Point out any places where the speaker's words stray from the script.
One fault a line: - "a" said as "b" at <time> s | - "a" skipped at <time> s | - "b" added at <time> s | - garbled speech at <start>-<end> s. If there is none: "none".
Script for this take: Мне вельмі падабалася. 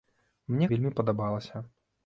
none